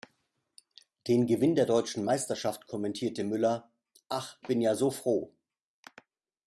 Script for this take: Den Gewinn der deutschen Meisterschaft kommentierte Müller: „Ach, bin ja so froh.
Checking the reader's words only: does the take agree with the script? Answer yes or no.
yes